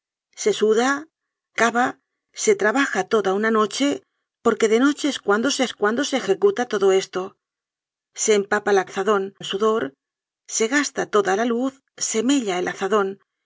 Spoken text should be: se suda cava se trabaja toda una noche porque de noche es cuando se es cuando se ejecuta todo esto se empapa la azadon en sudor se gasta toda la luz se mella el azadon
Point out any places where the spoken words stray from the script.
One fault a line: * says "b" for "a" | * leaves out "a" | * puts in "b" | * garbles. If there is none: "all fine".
all fine